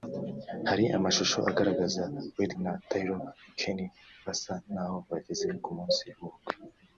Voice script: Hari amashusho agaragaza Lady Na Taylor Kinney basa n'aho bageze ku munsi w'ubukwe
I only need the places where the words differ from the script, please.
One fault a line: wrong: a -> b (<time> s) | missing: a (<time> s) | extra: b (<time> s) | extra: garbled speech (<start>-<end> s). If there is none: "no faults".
no faults